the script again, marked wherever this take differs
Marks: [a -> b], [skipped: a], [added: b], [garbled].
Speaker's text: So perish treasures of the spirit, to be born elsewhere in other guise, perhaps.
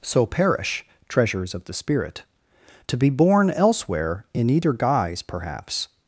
So perish treasures of the spirit, to be born elsewhere in [other -> either] guise, perhaps.